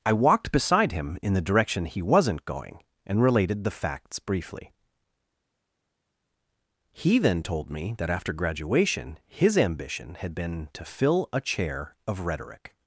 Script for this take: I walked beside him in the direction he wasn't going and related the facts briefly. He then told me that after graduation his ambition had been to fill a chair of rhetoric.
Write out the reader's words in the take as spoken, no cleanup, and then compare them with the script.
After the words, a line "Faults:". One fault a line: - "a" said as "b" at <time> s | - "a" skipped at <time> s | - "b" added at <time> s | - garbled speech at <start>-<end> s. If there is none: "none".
I walked beside him in the direction he wasn't going and related the facts briefly. He then told me that after graduation his ambition had been to fill a chair of rhetoric.
Faults:
none